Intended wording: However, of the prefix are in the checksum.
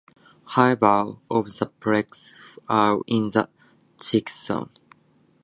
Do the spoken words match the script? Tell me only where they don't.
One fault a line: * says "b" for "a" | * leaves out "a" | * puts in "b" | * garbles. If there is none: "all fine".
all fine